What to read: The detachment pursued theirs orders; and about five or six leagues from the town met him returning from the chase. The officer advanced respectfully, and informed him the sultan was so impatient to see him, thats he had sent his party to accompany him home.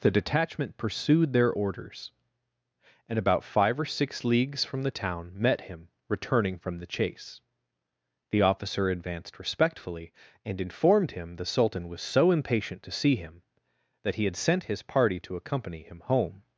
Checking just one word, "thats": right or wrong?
wrong